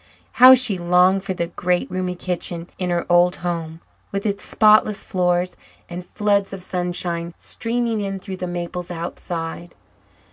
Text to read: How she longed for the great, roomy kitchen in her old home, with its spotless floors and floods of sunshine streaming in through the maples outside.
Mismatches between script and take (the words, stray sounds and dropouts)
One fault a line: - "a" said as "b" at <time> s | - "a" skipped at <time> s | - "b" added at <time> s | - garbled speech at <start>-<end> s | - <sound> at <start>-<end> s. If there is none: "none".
none